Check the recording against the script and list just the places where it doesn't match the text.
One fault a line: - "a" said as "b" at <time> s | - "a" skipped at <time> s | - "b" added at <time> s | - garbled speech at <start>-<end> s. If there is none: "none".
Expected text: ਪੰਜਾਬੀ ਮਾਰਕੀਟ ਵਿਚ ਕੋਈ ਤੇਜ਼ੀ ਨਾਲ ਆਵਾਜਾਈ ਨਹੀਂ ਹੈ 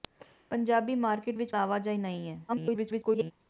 - "ਕੋਈ ਤੇਜ਼ੀ ਨਾਲ" skipped at 1.5 s
- garbled speech at 2.5-3.3 s